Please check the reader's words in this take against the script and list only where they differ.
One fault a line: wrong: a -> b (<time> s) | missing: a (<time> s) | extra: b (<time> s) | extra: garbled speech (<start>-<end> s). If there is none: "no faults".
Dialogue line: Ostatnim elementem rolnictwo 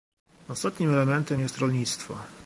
extra: jest (1.4 s)